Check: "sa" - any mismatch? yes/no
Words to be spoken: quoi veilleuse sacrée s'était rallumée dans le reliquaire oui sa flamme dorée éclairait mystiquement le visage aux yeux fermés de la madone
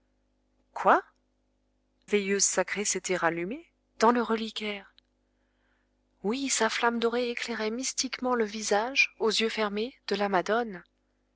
no